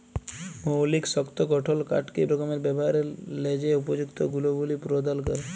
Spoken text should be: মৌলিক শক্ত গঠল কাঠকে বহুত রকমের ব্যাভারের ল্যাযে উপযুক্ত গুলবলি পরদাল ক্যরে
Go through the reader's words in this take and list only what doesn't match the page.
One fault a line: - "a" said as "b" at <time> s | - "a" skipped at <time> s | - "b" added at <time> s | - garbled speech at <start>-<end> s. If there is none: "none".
- "বহুত" skipped at 2.2 s